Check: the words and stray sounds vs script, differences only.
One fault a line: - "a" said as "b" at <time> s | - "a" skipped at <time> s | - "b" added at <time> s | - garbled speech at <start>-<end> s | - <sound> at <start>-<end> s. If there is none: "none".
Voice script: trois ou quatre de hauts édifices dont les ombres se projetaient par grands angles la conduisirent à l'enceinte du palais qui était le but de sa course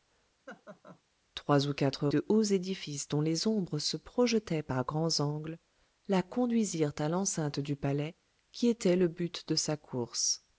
- laugh at 0.5-1.0 s